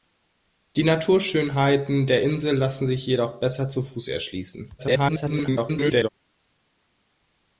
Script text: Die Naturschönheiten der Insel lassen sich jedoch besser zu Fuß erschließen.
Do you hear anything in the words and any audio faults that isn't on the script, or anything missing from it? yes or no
yes